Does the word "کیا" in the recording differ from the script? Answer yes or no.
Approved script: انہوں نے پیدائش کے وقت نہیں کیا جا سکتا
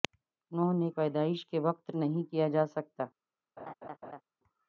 no